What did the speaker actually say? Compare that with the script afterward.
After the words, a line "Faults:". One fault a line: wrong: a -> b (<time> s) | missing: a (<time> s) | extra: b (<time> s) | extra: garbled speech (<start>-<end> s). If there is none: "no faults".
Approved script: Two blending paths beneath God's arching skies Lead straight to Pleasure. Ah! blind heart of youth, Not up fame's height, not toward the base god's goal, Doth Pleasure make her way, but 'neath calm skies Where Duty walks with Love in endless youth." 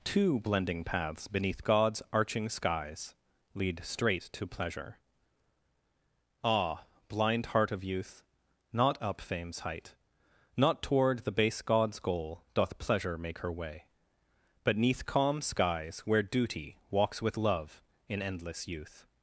Two blending paths beneath God's arching skies Lead straight to Pleasure. Ah! blind heart of youth, Not up fame's height, not toward the base god's goal, Doth Pleasure make her way, but 'neath calm skies Where Duty walks with Love in endless youth."
Faults:
no faults